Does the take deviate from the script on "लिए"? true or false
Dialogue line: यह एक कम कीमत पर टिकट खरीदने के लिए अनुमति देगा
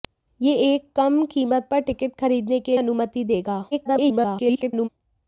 true